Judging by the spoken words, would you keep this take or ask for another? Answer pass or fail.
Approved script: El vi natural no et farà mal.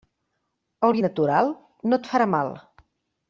pass